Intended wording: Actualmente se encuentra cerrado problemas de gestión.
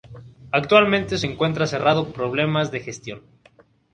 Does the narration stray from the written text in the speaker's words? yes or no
no